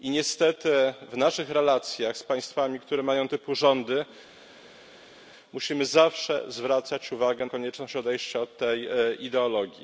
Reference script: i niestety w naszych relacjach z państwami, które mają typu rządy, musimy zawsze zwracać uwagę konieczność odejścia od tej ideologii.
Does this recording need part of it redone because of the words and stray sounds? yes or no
no